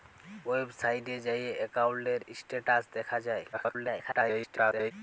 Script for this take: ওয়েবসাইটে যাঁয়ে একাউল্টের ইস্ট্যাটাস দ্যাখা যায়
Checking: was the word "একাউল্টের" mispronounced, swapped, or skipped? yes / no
no